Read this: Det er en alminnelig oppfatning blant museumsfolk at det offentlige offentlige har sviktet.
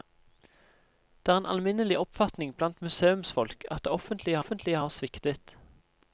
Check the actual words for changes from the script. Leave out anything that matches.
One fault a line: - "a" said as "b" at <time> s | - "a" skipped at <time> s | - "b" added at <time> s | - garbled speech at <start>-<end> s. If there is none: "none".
none